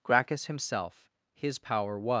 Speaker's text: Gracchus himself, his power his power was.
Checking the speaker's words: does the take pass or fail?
fail